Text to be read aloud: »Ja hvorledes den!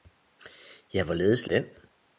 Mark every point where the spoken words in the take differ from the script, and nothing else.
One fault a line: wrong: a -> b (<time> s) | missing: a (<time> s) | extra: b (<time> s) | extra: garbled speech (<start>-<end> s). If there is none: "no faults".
no faults